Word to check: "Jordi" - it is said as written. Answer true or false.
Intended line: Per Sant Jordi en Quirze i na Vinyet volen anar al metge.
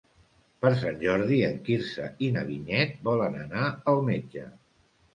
true